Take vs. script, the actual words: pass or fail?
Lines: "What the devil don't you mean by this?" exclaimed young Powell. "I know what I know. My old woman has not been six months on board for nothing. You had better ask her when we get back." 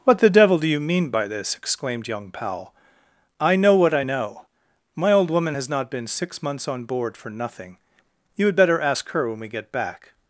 fail